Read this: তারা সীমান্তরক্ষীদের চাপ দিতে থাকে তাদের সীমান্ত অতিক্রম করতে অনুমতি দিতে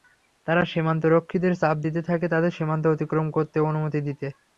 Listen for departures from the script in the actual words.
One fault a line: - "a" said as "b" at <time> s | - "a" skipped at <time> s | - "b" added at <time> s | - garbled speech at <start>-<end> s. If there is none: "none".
none